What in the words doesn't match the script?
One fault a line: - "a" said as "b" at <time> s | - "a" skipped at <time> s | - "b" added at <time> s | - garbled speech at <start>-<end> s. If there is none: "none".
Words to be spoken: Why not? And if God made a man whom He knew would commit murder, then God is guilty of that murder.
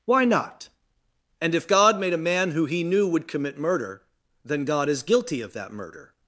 - "whom" said as "who" at 2.5 s